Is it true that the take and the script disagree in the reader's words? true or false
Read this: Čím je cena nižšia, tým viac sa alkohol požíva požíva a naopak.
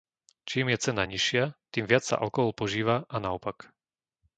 true